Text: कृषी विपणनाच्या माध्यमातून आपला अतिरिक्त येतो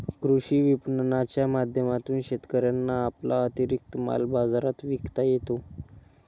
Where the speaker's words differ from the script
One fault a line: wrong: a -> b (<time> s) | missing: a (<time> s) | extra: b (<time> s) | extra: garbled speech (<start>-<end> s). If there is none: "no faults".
extra: शेतकऱ्यांना (2.2 s)
extra: माल बाजारात विकता (4.0 s)